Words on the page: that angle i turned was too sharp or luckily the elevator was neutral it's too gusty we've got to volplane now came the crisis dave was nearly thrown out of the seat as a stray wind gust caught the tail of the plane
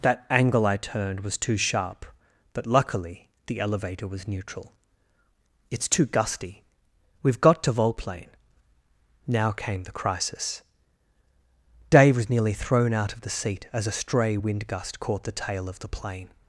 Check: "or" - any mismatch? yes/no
yes